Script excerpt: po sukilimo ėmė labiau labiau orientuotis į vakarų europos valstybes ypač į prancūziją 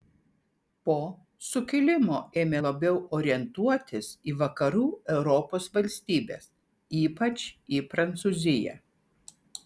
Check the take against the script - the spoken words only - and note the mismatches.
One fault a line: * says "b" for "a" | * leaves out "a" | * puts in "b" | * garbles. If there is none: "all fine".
* leaves out "labiau"